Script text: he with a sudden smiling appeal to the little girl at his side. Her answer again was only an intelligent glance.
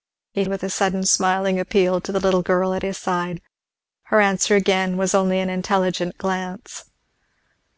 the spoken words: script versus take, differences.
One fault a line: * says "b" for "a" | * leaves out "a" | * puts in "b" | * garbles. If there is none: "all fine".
all fine